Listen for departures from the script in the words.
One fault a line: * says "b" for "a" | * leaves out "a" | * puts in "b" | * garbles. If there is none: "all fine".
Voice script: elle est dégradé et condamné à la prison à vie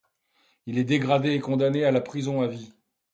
* says "il" for "elle"